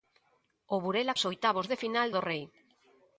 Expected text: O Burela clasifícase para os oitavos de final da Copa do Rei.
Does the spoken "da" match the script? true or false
false